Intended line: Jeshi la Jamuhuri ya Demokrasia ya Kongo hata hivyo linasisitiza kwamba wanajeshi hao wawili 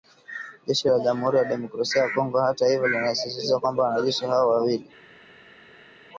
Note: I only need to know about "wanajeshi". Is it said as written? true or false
true